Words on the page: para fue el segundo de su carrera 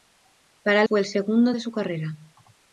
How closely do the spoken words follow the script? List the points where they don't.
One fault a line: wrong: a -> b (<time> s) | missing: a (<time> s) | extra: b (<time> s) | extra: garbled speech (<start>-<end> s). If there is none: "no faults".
no faults